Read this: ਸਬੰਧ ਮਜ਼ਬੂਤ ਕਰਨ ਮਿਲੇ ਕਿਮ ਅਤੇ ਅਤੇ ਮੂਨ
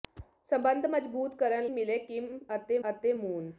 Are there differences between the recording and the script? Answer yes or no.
no